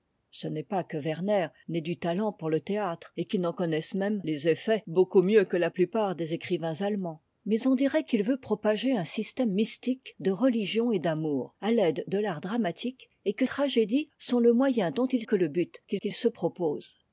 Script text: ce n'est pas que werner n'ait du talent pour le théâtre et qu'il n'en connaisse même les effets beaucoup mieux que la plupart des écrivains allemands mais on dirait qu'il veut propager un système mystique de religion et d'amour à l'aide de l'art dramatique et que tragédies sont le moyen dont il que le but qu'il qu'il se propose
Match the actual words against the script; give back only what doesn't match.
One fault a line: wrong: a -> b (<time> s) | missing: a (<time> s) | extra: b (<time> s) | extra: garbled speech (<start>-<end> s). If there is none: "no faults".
no faults